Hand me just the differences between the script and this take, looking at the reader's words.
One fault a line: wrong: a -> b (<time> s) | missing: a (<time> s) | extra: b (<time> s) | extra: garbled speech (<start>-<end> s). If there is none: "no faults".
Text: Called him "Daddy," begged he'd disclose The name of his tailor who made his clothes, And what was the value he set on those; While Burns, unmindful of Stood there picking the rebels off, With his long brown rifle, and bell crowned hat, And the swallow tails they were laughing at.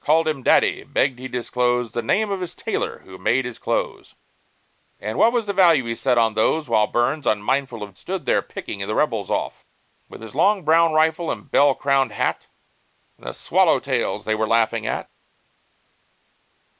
no faults